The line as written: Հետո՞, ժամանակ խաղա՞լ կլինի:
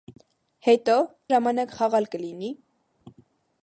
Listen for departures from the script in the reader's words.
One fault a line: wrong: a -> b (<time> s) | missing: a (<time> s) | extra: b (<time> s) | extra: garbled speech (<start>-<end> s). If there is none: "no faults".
no faults